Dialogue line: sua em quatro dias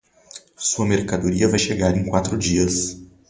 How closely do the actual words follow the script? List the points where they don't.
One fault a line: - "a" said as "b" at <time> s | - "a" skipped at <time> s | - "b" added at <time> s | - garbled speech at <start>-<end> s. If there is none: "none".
- "mercadoria vai chegar" added at 0.9 s